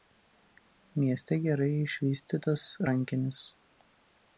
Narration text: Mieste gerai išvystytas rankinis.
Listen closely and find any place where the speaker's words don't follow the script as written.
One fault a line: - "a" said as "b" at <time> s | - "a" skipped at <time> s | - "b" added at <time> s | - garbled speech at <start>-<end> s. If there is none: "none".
none